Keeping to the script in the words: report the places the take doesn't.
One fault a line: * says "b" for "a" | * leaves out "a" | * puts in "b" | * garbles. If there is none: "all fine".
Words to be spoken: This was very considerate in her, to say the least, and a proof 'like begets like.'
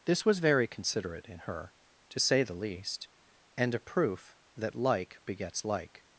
* puts in "that"